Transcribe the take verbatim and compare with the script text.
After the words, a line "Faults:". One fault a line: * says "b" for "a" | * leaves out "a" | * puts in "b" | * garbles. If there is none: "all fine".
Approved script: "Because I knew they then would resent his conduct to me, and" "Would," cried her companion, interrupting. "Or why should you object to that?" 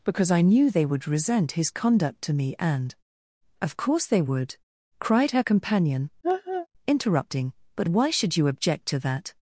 "Because I knew they would resent his conduct to me, and" "Of course they would," cried her companion, interrupting. "But why should you object to that?"
Faults:
* leaves out "then"
* puts in "Of course they"
* says "But" for "Or"